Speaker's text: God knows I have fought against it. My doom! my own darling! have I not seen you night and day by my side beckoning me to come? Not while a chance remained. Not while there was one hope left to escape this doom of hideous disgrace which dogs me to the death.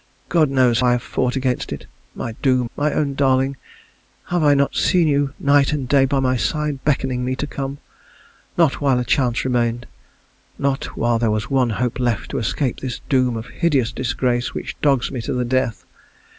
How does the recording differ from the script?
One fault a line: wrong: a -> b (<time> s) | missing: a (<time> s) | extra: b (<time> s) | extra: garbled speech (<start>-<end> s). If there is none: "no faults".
no faults